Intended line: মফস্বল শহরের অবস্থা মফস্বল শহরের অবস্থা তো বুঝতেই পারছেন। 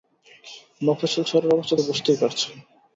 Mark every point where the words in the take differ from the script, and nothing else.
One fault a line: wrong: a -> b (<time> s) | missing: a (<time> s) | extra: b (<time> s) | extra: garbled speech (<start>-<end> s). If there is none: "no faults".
missing: মফস্বল শহরের অবস্থা (1.8 s)